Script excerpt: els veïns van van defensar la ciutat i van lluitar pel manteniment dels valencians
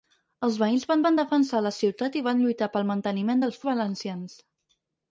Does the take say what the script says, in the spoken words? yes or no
yes